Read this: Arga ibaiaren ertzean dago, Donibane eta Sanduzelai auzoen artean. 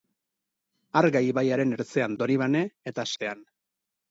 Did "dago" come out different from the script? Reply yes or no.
yes